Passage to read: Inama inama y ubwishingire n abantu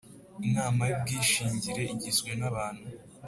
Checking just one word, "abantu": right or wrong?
right